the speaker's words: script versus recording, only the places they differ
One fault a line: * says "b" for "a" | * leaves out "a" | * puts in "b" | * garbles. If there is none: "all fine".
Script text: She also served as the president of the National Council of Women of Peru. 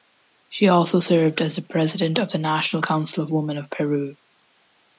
all fine